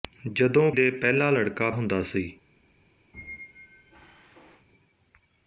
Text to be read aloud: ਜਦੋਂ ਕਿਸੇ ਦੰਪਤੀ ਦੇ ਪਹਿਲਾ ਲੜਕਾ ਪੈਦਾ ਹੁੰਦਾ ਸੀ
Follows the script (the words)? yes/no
no